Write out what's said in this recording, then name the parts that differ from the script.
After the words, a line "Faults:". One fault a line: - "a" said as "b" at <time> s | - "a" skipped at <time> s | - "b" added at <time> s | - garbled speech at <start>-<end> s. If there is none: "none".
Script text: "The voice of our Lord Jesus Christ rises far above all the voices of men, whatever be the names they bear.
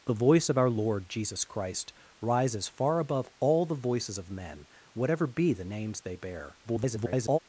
"The voice of our Lord Jesus Christ rises far above all the voices of men, whatever be the names they bear. [garbled]
Faults:
- garbled speech at 6.6-7.4 s